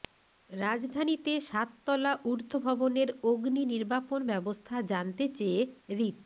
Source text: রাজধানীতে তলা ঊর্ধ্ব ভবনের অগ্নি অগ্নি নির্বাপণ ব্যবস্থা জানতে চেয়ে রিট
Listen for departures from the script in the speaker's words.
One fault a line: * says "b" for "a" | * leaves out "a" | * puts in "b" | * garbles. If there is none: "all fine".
* puts in "সাত"
* leaves out "অগ্নি"